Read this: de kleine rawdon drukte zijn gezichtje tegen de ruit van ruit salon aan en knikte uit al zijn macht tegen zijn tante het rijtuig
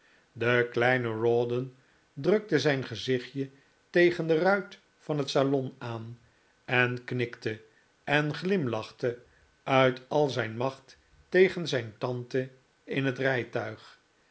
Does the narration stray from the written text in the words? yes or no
yes